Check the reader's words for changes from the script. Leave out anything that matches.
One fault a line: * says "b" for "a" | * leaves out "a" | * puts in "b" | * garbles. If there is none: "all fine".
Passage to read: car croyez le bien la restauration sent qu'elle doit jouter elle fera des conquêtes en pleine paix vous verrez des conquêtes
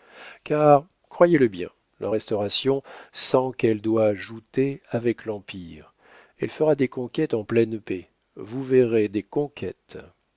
* puts in "avec l'empire"